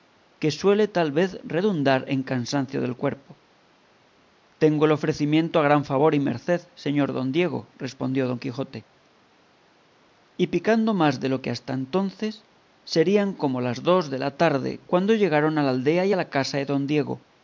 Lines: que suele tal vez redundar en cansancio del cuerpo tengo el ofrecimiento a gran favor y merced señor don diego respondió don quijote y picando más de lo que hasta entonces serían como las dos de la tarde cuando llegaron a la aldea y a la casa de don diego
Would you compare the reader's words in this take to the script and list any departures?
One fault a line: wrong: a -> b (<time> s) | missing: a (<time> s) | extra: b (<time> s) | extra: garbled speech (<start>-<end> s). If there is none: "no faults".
no faults